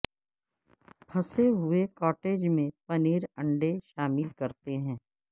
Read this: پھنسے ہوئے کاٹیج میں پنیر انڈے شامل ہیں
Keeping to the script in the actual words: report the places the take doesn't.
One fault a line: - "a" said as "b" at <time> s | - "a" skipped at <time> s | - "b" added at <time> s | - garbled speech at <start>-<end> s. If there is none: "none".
- "کرتے" added at 4.4 s